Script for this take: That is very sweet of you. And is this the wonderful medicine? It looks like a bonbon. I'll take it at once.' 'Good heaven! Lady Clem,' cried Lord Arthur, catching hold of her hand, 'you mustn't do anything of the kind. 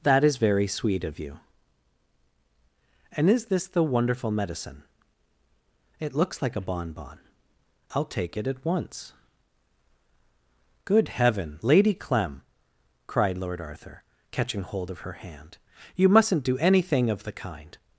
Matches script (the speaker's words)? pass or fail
pass